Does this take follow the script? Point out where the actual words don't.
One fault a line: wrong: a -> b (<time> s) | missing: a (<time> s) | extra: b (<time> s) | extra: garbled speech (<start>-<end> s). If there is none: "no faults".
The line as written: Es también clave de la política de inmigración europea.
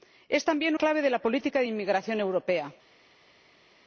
no faults